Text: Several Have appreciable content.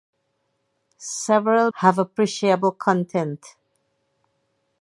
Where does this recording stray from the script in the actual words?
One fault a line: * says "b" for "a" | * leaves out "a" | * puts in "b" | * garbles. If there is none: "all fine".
all fine